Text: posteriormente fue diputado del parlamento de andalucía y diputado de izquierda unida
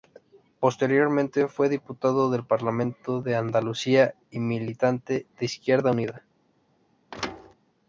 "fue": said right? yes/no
yes